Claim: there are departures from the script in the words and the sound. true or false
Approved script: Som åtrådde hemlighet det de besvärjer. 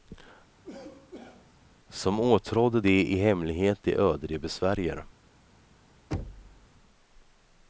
true